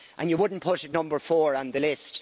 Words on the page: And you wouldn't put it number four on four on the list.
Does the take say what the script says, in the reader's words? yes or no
no